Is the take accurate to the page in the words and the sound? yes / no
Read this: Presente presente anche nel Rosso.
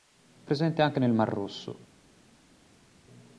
no